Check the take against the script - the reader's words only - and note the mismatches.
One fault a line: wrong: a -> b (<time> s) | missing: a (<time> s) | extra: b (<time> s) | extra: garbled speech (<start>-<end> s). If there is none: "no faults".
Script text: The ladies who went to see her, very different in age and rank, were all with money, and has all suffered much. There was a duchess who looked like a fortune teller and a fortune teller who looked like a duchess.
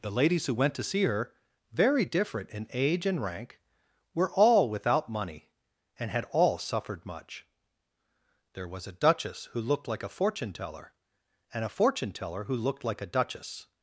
wrong: with -> without (4.7 s)
wrong: has -> had (6.1 s)